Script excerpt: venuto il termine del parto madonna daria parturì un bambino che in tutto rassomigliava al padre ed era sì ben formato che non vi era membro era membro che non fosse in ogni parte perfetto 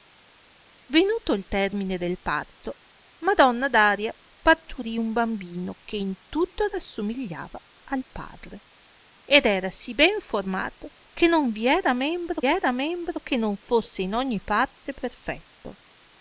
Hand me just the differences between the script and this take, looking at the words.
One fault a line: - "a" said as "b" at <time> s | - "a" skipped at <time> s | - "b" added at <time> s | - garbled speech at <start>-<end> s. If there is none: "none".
none